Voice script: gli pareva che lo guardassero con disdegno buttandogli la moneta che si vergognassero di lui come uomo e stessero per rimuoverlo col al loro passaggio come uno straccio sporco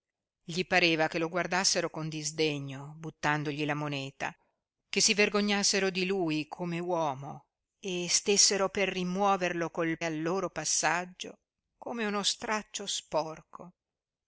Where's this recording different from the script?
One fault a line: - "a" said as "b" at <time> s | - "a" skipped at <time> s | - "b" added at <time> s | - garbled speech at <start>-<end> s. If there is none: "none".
none